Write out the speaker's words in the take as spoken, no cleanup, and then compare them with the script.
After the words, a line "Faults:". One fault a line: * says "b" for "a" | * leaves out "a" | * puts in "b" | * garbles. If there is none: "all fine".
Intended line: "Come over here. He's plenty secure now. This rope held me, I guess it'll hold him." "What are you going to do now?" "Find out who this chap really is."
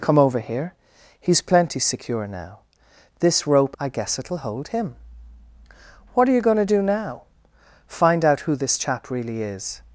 "Come over here. He's plenty secure now. This rope I guess it'll hold him." "What are you going to do now?" "Find out who this chap really is."
Faults:
* leaves out "held me"